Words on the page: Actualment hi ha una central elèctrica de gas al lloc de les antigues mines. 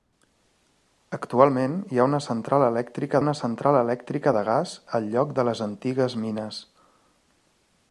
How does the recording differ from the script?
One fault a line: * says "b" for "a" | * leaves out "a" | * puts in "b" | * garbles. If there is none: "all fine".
* puts in "una central elèctrica"